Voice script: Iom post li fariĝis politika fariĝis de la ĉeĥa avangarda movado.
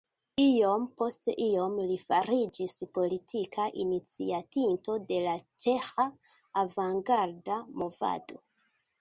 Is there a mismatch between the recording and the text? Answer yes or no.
yes